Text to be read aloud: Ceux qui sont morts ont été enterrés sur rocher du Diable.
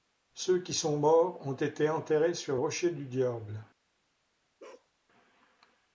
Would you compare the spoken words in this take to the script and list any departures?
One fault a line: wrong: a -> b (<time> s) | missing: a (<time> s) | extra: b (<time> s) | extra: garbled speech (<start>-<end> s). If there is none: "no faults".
no faults